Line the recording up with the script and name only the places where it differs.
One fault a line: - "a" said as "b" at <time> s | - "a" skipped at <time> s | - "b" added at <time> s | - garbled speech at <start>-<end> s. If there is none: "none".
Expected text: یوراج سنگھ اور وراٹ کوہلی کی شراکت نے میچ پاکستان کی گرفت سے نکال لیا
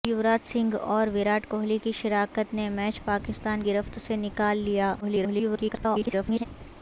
- "کی" skipped at 3.6 s
- garbled speech at 5.0-6.5 s